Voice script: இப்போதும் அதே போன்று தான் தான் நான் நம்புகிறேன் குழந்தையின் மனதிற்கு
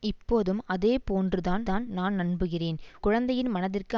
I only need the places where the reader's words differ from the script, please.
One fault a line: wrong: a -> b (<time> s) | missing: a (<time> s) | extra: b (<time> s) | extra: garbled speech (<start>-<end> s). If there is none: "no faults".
no faults